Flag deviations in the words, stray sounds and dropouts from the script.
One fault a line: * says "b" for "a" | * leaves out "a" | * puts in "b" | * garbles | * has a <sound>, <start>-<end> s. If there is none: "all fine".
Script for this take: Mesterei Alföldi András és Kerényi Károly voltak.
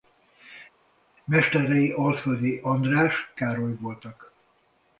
* leaves out "és Kerényi"